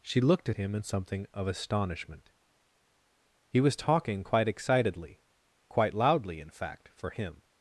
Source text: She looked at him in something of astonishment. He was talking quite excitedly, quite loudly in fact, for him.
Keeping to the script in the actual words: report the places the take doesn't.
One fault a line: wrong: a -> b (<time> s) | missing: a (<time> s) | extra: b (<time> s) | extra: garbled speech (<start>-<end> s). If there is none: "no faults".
no faults